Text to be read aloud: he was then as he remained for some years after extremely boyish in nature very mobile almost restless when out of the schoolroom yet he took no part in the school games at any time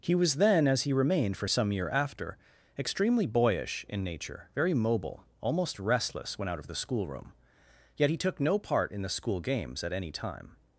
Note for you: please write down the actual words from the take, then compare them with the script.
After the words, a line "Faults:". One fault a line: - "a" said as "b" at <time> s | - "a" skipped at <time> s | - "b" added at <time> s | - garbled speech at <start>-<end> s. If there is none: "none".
he was then as he remained for some year after extremely boyish in nature very mobile almost restless when out of the schoolroom yet he took no part in the school games at any time
Faults:
- "years" said as "year" at 1.7 s